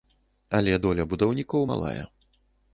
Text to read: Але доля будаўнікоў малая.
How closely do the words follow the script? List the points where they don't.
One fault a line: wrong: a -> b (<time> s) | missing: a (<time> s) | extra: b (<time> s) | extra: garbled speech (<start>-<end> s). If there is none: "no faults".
no faults